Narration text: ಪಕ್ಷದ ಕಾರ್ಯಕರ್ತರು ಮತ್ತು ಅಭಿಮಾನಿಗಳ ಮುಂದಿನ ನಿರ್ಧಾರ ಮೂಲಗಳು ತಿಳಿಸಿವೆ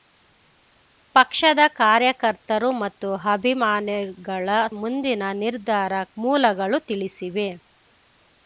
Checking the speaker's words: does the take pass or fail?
pass